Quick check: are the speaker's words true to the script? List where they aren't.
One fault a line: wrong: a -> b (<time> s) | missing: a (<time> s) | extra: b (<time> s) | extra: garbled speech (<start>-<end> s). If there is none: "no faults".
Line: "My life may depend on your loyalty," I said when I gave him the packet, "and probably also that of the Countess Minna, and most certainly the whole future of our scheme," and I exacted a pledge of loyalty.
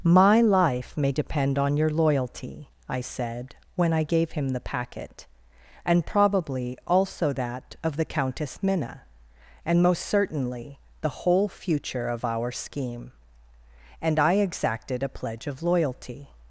no faults